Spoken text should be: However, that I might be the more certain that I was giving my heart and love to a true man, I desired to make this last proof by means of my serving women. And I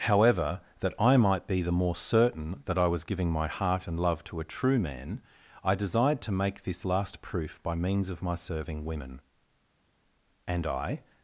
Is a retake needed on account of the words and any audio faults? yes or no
no